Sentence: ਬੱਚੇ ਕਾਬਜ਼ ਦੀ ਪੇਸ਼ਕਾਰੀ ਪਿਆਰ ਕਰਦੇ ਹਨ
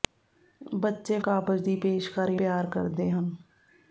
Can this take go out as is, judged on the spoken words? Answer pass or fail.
pass